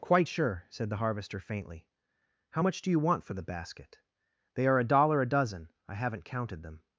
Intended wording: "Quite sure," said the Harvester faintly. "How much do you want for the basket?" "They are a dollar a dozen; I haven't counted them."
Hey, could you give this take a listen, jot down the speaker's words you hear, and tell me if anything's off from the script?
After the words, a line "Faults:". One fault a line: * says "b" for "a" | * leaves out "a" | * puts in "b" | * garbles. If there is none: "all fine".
"Quite sure," said the Harvester faintly. "How much do you want for the basket?" "They are a dollar a dozen; I haven't counted them."
Faults:
all fine